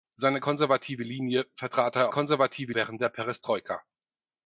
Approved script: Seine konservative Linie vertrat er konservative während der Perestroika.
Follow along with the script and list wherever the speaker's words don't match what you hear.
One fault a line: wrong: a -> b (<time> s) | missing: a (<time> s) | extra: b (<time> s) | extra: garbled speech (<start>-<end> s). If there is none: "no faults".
no faults